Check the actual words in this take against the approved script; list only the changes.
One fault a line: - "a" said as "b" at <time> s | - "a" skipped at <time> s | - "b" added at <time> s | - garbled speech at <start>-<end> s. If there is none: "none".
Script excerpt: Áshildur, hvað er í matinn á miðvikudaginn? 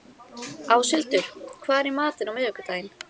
none